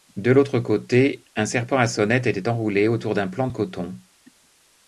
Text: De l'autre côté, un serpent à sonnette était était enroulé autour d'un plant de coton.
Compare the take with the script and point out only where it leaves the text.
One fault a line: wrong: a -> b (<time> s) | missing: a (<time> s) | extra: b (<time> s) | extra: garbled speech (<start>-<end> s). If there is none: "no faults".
missing: était (2.5 s)